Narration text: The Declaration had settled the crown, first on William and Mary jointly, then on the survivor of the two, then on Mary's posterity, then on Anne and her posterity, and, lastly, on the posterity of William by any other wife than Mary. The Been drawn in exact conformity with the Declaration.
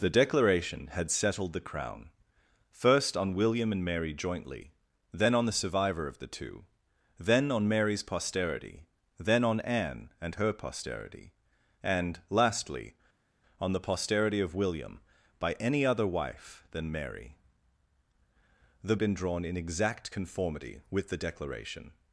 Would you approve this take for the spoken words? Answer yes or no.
yes